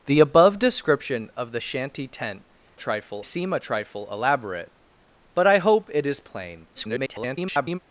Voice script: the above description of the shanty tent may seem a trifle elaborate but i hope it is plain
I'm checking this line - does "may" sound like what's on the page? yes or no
no